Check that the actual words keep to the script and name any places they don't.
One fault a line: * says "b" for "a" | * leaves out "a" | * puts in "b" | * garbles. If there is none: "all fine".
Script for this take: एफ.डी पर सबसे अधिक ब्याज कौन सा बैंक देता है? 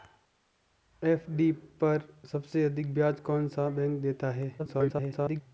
* garbles